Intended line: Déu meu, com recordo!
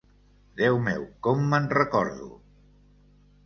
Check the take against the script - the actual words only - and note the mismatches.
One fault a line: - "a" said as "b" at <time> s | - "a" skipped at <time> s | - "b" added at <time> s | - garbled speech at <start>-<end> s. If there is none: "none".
- "me'n" added at 1.5 s